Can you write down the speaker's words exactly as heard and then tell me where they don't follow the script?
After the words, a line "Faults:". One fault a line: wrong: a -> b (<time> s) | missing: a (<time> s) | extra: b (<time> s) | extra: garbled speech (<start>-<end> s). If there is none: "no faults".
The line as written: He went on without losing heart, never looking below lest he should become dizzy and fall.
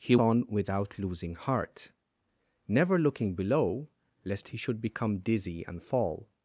He on without losing heart, never looking below lest he should become dizzy and fall.
Faults:
missing: went (0.1 s)